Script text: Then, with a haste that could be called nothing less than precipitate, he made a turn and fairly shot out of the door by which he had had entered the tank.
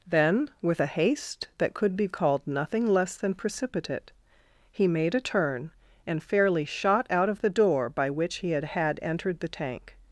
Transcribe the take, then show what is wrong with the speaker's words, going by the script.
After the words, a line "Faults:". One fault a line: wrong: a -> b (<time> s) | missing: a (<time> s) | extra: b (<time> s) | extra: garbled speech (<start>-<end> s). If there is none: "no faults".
Then, with a haste that could be called nothing less than precipitate, he made a turn and fairly shot out of the door by which he had had entered the tank.
Faults:
no faults